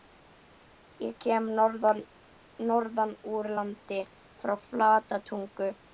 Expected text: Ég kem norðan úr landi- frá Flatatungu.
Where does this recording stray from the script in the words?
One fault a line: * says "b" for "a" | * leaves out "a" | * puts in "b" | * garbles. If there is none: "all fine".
all fine